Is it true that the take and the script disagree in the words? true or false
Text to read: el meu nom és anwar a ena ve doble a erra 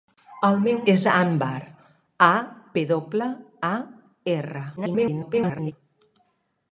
true